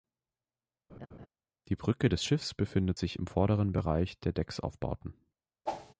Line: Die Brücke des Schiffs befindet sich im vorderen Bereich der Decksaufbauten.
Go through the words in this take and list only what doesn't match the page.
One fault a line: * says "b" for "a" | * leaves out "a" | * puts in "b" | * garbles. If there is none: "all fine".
all fine